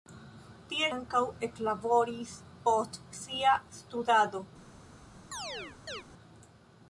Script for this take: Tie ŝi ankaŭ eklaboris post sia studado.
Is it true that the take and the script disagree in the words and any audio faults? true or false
true